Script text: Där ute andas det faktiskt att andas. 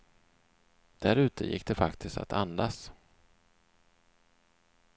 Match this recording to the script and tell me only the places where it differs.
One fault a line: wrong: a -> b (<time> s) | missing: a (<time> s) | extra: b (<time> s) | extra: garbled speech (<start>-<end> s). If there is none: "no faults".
wrong: andas -> gick (1.4 s)